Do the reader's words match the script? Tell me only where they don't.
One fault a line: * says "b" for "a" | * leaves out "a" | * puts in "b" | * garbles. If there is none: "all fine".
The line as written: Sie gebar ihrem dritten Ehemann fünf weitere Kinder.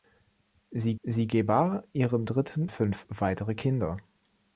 * puts in "sie"
* leaves out "Ehemann"